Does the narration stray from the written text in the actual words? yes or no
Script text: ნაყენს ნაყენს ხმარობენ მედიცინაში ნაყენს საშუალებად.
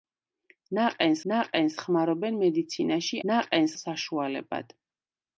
no